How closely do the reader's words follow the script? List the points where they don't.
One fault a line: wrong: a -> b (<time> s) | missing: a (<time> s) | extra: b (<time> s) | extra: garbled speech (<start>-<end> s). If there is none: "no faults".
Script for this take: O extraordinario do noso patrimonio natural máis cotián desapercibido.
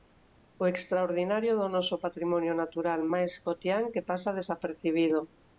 extra: que pasa (3.9 s)